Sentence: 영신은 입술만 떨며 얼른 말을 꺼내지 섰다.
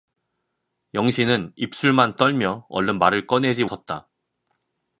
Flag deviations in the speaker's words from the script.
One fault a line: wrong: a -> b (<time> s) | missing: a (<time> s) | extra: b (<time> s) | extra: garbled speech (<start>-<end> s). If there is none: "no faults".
no faults